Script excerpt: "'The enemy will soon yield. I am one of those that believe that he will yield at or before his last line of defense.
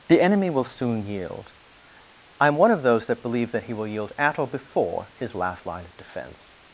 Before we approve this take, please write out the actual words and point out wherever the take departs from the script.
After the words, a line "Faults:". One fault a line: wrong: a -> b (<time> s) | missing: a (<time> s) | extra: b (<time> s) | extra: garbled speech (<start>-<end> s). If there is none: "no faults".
"'The enemy will soon yield. I am one of those that believe that he will yield at or before his last line of defense.
Faults:
no faults